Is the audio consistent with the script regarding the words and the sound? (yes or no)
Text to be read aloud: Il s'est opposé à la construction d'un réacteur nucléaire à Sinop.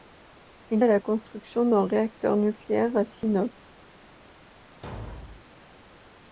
no